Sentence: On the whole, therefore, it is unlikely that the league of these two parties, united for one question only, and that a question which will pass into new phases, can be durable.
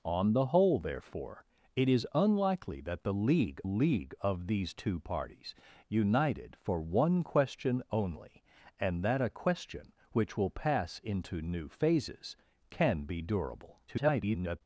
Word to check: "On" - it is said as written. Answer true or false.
true